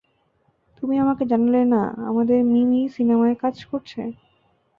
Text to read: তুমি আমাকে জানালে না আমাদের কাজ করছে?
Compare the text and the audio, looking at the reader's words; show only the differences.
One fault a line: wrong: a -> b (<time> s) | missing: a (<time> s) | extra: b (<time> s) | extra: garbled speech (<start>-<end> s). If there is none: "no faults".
extra: মিমি সিনেমায় (2.5 s)